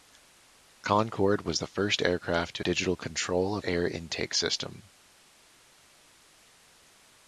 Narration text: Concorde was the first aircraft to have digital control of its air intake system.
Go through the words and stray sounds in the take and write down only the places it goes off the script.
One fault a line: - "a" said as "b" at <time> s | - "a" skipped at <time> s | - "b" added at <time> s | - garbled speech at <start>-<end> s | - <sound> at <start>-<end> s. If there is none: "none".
- "have" skipped at 2.6 s
- "its" skipped at 3.7 s